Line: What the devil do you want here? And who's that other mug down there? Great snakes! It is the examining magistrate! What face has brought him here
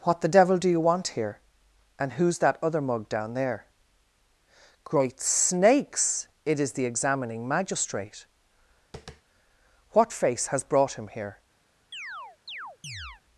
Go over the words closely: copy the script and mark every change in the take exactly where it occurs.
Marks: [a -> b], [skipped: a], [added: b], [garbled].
What the devil do you want here? And who's that other mug down there? Great snakes! It is the examining magistrate! What face has brought him here